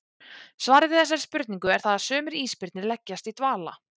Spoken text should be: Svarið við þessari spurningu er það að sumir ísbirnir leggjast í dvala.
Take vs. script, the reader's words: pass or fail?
pass